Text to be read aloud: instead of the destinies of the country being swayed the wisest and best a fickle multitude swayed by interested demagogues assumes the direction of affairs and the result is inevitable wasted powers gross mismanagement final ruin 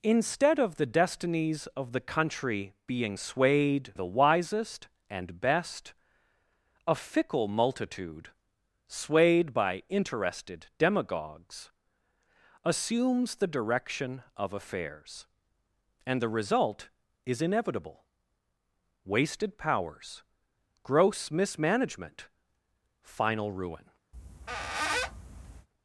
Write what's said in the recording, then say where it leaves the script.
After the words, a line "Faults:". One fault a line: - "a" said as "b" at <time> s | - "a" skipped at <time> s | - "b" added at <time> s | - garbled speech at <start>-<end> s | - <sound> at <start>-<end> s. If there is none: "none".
instead of the destinies of the country being swayed the wisest and best a fickle multitude swayed by interested demagogues assumes the direction of affairs and the result is inevitable wasted powers gross mismanagement final ruin
Faults:
- squeak at 24.1-25.7 s